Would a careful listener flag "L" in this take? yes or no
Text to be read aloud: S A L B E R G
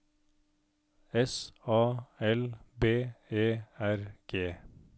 no